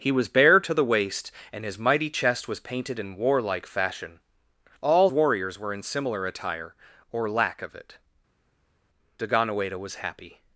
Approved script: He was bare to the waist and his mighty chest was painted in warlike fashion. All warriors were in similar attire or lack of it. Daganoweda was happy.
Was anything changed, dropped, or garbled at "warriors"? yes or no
no